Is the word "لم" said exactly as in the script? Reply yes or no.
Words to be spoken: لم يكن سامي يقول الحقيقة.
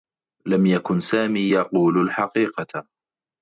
yes